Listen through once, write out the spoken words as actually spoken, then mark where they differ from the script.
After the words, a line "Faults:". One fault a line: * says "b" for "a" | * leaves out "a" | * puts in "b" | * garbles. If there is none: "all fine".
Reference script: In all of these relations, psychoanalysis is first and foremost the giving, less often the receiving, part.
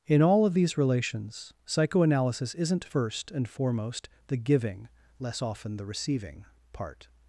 In all of these relations, psychoanalysis isn't first and foremost the giving, less often the receiving, part.
Faults:
* says "isn't" for "is"